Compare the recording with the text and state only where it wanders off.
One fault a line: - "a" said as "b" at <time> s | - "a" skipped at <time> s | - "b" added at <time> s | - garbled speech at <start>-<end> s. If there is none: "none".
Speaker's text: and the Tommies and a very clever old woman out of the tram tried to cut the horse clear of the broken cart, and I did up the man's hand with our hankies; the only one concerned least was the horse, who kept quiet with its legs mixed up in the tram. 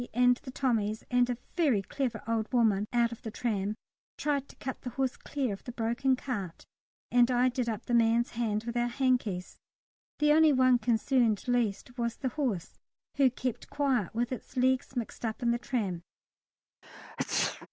none